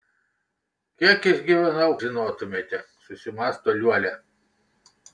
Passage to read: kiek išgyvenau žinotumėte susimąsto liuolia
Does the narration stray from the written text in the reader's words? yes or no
no